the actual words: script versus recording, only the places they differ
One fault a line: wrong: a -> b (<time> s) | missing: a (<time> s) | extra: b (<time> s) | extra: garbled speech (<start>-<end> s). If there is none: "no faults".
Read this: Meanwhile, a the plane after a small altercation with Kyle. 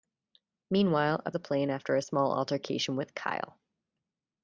no faults